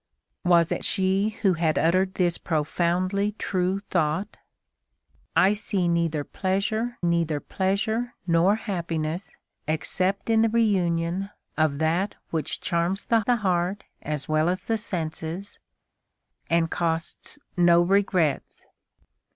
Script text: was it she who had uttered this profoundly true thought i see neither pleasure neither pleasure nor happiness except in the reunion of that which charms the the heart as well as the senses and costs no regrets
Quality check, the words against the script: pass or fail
pass